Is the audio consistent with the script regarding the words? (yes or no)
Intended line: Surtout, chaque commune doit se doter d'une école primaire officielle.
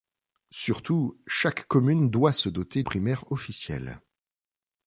no